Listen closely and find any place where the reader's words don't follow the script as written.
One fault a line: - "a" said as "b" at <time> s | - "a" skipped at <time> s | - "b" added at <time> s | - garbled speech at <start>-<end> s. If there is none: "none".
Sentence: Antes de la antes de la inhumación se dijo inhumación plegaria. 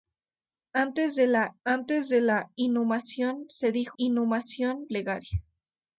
none